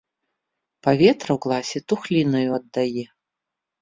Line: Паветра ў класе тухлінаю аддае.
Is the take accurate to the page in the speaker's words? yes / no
yes